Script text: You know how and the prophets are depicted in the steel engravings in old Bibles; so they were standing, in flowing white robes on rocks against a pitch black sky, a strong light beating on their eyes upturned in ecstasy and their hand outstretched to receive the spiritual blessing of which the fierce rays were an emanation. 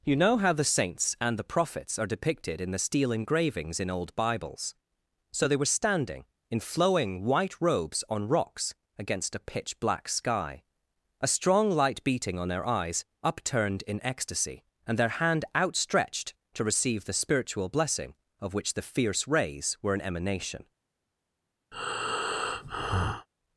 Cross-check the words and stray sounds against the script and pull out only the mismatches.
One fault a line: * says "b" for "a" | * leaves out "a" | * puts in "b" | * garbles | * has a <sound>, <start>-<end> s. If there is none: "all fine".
* puts in "the saints"
* has a breath, 21.7-23.3 s